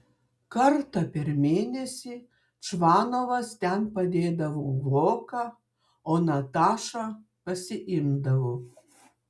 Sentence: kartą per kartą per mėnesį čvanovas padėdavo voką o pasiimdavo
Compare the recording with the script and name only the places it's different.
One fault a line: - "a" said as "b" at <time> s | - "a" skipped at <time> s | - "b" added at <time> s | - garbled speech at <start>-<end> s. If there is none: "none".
- "kartą per" skipped at 1.3 s
- "ten" added at 3.6 s
- "natašą" added at 6.3 s